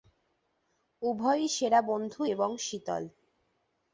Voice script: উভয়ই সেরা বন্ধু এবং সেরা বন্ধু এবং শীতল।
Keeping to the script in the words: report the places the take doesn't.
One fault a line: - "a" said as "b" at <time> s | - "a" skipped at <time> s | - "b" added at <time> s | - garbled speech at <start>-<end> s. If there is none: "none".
- "সেরা বন্ধু এবং" skipped at 2.5 s